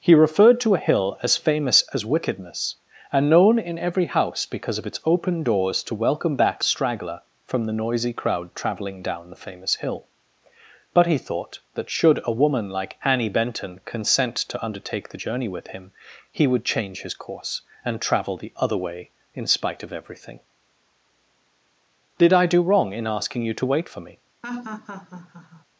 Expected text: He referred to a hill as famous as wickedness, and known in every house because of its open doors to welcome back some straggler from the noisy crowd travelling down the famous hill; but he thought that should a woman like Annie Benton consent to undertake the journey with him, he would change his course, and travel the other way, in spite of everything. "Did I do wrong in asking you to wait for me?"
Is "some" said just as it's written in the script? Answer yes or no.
no